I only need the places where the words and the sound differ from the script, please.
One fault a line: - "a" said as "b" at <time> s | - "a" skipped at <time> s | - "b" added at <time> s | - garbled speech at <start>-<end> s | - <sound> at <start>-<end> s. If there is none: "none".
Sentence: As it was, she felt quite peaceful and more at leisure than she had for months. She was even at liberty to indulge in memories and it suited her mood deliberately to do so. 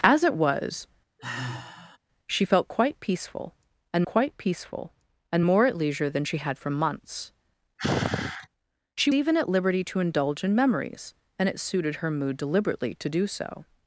- sigh at 1.2-2.0 s
- "quite peaceful and" added at 4.0 s
- sigh at 7.8-8.5 s
- "was" skipped at 9.1 s